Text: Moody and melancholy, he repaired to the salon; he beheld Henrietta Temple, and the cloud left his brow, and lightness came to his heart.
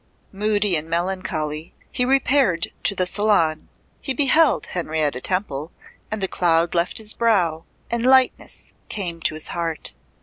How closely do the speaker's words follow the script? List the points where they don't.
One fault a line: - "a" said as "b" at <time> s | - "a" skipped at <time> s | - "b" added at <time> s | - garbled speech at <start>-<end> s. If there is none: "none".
none